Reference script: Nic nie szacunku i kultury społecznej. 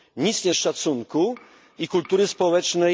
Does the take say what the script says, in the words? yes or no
yes